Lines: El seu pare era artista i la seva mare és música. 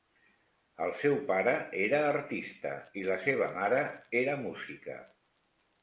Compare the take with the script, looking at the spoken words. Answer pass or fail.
fail